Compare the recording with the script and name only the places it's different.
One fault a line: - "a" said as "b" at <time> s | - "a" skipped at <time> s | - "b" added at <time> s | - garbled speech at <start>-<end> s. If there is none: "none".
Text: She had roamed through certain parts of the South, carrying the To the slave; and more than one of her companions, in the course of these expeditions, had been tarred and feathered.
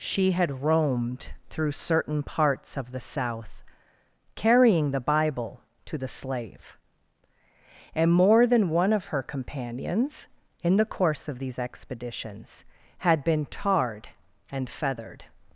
- "Bible" added at 5.0 s